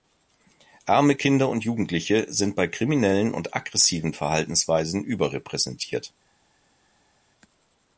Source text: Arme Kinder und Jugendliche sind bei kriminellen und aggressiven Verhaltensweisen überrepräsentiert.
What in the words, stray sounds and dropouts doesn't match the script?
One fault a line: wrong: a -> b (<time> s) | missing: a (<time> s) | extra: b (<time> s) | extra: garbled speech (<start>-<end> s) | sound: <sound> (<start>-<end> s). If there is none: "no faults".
no faults